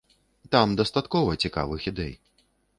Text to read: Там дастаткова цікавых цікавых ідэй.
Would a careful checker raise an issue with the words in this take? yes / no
yes